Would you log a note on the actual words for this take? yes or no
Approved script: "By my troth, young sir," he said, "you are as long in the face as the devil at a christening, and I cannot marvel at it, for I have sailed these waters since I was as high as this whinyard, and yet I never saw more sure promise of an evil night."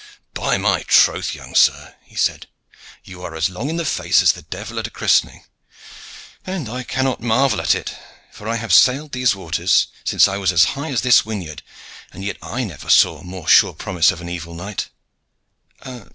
no